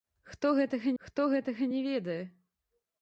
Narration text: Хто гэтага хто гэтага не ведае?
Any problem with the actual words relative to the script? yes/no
no